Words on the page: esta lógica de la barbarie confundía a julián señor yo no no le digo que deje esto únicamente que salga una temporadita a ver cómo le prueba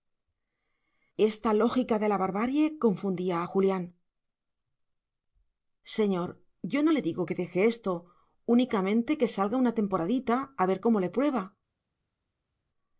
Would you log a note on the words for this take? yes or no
yes